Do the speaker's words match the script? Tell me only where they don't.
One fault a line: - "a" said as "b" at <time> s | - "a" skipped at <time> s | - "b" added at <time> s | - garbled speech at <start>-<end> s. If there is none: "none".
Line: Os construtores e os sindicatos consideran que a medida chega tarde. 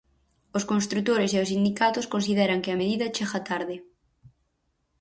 none